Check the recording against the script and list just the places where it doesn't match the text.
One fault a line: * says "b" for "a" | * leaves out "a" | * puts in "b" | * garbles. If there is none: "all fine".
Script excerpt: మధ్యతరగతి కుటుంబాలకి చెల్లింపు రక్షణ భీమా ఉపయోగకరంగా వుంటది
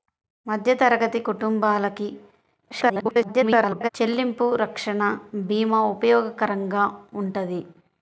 * garbles